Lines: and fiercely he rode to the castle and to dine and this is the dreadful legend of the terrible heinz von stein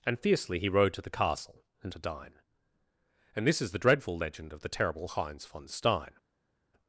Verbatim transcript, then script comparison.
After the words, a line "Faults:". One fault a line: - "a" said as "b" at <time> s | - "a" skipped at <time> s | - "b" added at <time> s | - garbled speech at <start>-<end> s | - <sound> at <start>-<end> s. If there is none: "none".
and fiercely he rode to the castle and to dine and this is the dreadful legend of the terrible heinz von stein
Faults:
none